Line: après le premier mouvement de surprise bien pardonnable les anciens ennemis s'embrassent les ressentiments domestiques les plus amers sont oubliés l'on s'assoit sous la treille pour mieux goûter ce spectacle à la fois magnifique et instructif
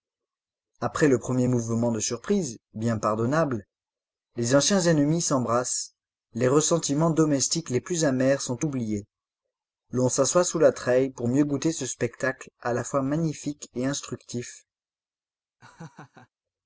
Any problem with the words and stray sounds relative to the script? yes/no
yes